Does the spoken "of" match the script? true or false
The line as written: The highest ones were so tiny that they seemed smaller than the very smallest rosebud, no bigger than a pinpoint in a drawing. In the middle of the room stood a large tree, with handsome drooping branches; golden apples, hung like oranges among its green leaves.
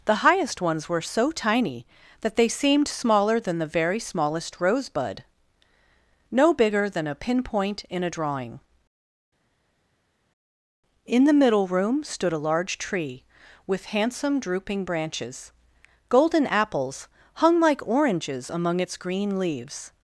false